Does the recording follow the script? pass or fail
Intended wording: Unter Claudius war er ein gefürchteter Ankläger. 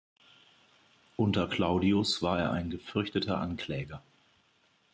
pass